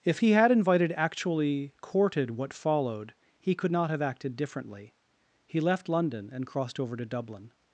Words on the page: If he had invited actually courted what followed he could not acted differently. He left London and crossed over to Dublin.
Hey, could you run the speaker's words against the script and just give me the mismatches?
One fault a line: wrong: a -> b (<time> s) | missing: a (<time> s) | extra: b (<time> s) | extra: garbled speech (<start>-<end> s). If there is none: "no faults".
extra: have (3.9 s)